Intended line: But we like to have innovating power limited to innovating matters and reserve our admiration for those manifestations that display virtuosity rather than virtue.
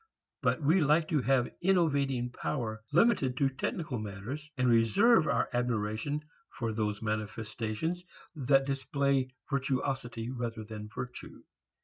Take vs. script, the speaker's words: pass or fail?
fail